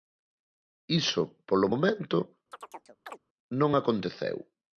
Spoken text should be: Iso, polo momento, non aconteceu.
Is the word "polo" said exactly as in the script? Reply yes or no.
yes